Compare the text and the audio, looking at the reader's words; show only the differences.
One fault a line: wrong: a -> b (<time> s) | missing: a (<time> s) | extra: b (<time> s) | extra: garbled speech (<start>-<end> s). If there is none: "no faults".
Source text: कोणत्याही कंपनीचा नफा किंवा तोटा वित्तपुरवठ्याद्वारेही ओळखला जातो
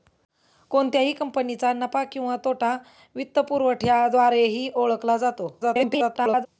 extra: garbled speech (5.6-6.5 s)